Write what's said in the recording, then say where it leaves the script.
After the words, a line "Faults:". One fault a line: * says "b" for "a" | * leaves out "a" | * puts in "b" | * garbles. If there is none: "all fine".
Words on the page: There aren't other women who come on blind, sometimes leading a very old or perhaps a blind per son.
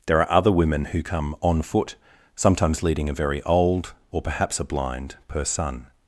There are other women who come on foot, sometimes leading a very old or perhaps a blind per son.
Faults:
* says "are" for "aren't"
* says "foot" for "blind"